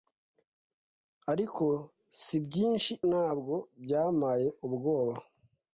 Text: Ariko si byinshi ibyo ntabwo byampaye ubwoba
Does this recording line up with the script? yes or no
no